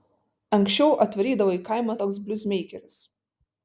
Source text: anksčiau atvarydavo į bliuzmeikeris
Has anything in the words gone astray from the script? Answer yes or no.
yes